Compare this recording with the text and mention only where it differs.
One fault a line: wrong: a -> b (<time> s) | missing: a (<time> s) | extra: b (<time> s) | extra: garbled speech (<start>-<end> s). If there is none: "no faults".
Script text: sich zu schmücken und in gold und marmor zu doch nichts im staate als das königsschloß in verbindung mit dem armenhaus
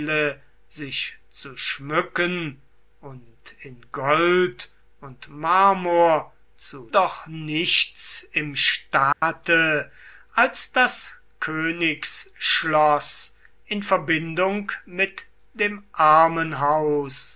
no faults